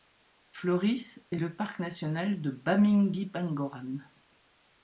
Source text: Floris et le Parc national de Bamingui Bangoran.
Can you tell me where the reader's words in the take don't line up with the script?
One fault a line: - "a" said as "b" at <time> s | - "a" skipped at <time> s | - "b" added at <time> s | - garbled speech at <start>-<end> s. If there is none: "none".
none